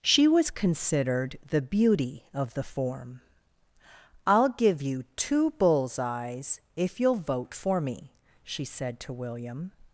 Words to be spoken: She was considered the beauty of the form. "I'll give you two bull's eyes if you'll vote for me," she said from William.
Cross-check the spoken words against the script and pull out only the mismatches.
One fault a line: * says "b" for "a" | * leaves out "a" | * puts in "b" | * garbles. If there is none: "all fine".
* says "to" for "from"